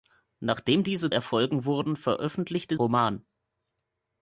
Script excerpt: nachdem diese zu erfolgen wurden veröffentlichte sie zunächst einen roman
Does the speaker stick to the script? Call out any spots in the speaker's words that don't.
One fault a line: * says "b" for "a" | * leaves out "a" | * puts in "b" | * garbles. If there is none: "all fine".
* leaves out "zu"
* leaves out "sie zunächst einen"